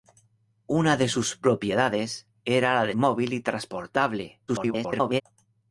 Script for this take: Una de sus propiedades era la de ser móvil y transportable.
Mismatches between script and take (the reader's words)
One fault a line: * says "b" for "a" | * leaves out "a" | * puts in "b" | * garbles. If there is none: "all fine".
* leaves out "ser"
* garbles